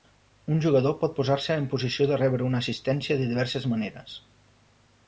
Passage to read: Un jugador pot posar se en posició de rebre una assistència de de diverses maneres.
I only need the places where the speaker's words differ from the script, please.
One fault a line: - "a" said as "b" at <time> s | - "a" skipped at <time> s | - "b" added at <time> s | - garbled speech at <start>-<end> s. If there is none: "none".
- "de" skipped at 3.3 s